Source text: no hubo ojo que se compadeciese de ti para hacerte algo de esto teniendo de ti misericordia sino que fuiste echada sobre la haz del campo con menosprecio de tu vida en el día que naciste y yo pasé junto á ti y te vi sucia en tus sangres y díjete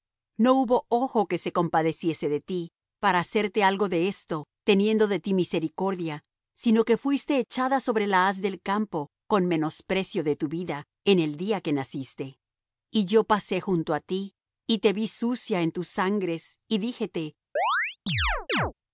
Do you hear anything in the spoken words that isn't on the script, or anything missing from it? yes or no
no